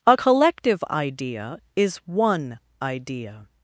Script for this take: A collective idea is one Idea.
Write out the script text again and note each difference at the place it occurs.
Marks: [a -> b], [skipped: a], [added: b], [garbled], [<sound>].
A collective idea is one Idea.